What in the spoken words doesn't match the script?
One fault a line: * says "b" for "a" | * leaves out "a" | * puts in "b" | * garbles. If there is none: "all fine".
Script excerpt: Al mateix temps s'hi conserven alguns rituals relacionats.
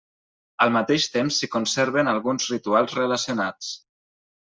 all fine